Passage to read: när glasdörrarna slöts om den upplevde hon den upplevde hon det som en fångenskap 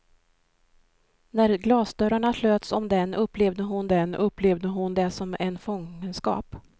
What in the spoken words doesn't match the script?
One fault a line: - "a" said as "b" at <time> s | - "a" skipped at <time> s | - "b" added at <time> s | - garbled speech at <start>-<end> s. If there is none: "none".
none